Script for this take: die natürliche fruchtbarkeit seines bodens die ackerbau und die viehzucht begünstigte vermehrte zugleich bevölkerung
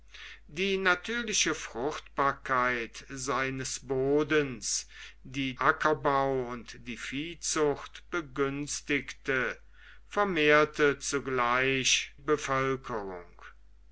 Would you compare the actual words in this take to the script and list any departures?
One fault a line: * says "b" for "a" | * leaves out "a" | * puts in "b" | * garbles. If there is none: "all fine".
all fine